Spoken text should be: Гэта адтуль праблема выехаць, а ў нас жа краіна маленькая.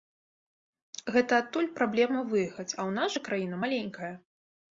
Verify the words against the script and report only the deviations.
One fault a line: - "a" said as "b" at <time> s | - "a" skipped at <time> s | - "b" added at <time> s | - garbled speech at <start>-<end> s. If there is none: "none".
none